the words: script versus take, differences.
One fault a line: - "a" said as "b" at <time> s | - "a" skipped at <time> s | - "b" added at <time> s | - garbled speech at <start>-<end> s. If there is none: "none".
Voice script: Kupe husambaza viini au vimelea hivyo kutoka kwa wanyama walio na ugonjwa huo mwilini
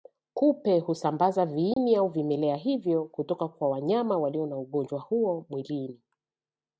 none